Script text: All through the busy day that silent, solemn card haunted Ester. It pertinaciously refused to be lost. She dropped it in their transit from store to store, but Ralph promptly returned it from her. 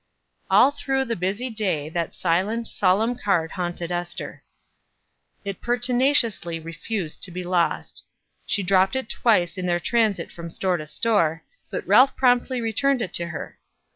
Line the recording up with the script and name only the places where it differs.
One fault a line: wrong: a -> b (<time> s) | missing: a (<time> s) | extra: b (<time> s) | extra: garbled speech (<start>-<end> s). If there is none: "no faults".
extra: twice (9.1 s)
wrong: from -> to (13.1 s)